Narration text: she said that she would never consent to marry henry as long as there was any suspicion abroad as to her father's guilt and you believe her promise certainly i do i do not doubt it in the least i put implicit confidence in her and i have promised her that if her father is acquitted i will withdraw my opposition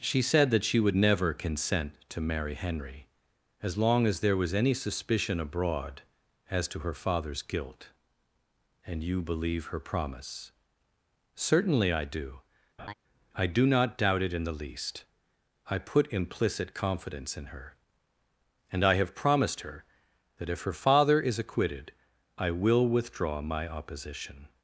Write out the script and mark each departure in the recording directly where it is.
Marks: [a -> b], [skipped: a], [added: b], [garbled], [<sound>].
she said that she would never consent to marry henry as long as there was any suspicion abroad as to her father's guilt and you believe her promise certainly i do [laugh] i do not doubt it in the least i put implicit confidence in her and i have promised her that if her father is acquitted i will withdraw my opposition